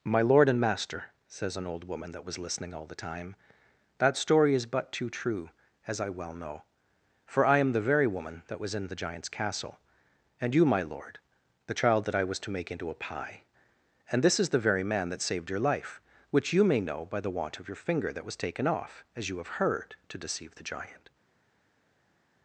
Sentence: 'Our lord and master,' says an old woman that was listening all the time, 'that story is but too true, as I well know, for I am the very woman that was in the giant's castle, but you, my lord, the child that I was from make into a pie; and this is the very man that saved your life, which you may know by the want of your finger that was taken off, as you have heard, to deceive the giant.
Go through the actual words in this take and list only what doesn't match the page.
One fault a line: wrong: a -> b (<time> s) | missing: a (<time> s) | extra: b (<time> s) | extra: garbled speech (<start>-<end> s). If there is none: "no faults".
wrong: Our -> My (0.0 s)
wrong: but -> and (10.4 s)
wrong: from -> to (12.4 s)